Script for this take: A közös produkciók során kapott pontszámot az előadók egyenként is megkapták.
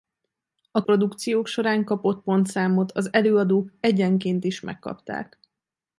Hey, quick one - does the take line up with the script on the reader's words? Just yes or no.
no